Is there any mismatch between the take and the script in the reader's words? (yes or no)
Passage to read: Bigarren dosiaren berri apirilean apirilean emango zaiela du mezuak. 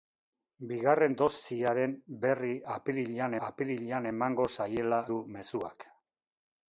no